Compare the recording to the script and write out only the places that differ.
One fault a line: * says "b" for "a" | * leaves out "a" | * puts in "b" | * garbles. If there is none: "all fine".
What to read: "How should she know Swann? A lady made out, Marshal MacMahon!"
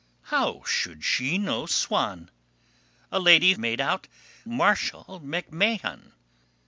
all fine